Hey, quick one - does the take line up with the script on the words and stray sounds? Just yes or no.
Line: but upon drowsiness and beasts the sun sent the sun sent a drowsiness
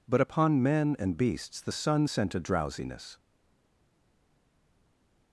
no